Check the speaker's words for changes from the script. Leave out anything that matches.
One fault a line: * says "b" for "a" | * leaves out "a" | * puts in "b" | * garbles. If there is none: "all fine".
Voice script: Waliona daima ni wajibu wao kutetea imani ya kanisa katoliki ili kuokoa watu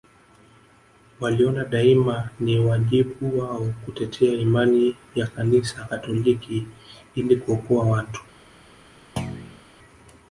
all fine